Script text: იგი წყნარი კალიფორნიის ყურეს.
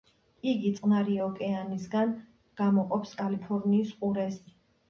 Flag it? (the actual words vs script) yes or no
yes